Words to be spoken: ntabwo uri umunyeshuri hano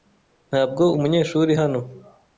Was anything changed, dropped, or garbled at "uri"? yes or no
yes